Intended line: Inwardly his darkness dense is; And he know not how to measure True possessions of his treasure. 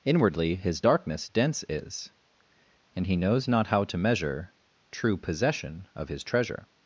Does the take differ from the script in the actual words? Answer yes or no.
yes